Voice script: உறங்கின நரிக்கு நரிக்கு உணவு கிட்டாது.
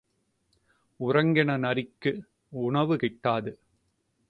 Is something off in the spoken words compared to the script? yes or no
yes